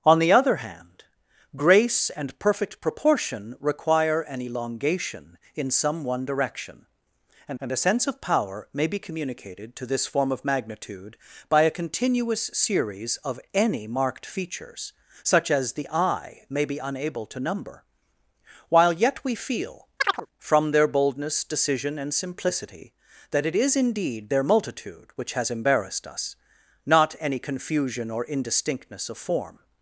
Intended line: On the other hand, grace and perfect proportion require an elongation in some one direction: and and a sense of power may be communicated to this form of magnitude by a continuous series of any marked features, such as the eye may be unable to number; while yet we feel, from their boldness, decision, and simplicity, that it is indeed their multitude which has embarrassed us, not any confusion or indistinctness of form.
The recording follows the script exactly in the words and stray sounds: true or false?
false